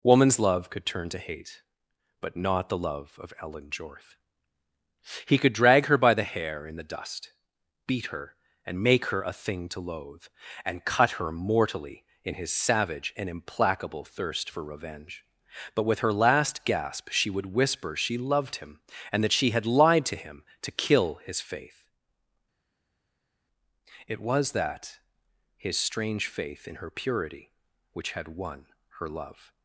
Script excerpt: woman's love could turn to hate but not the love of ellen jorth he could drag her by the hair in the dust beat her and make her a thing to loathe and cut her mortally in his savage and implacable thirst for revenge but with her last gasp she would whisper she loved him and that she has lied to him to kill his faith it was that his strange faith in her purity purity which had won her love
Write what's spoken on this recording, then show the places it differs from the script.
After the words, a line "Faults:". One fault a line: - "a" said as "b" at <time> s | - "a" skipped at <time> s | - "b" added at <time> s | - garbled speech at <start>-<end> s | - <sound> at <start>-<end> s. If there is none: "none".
woman's love could turn to hate but not the love of ellen jorth he could drag her by the hair in the dust beat her and make her a thing to loathe and cut her mortally in his savage and implacable thirst for revenge but with her last gasp she would whisper she loved him and that she had lied to him to kill his faith it was that his strange faith in her purity which had won her love
Faults:
- "has" said as "had" at 19.5 s
- "purity" skipped at 27.5 s